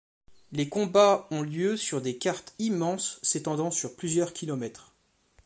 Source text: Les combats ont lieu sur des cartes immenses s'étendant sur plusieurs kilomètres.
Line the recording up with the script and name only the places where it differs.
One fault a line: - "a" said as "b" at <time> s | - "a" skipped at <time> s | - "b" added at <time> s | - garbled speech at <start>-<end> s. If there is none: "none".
none